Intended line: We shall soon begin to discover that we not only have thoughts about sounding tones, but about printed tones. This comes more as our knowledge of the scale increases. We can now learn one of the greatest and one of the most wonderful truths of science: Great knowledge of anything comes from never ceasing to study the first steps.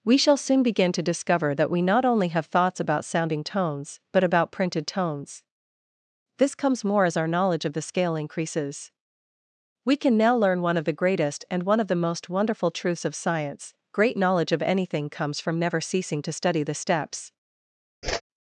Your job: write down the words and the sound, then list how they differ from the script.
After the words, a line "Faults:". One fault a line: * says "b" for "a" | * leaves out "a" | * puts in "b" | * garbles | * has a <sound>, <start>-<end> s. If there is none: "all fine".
We shall soon begin to discover that we not only have thoughts about sounding tones, but about printed tones. This comes more as our knowledge of the scale increases. We can now learn one of the greatest and one of the most wonderful truths of science: Great knowledge of anything comes from never ceasing to study the steps.
Faults:
* leaves out "first"
* has a whoosh, 18.0-18.2 s